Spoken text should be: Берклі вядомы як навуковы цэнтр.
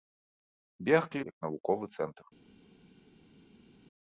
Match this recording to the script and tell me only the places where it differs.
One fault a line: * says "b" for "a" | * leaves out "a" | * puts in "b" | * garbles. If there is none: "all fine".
* leaves out "вядомы"